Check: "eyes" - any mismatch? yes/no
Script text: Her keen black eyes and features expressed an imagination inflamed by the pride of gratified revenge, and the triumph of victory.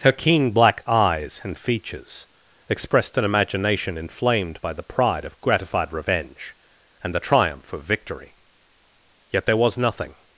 no